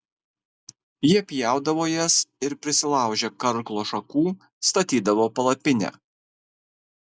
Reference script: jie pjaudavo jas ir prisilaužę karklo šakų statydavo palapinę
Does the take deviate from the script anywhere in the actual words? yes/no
no